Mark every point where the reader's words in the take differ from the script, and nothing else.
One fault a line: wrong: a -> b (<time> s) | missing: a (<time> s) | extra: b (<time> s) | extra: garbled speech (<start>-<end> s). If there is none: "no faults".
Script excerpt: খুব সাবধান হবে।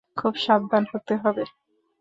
extra: হতে (0.9 s)